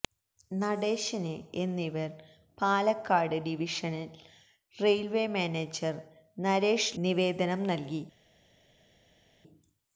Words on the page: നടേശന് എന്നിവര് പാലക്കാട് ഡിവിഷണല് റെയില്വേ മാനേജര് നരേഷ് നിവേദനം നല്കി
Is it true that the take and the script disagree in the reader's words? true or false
false